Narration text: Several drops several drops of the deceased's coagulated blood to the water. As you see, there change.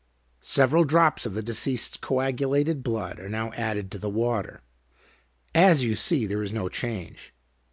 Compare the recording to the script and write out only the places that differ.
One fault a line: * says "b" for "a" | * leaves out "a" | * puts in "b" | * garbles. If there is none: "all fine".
* leaves out "several drops"
* puts in "are now added"
* puts in "is no"